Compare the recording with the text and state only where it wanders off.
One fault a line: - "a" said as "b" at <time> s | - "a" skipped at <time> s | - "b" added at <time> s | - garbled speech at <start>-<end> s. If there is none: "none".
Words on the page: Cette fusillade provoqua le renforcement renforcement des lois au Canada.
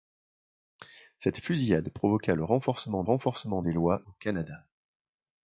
none